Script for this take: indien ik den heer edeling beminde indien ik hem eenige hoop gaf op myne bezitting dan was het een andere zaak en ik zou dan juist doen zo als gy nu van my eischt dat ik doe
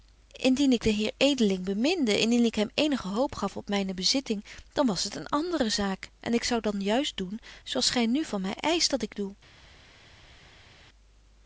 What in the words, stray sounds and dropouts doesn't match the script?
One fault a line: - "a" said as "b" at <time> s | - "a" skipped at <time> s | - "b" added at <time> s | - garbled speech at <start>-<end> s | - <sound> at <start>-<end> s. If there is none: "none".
none